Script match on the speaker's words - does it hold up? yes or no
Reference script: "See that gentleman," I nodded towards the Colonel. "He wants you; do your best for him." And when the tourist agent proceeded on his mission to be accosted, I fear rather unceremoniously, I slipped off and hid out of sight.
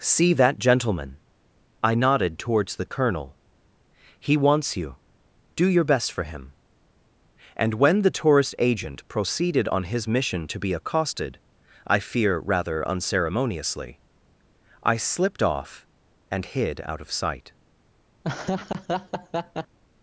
yes